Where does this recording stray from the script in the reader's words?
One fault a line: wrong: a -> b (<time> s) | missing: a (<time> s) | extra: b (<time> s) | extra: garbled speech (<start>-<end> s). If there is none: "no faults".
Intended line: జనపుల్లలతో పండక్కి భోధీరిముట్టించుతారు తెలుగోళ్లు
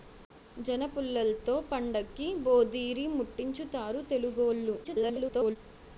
extra: garbled speech (4.8-5.6 s)